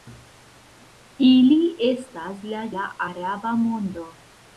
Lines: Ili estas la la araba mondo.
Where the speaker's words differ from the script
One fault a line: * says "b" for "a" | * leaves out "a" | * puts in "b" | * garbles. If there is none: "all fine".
all fine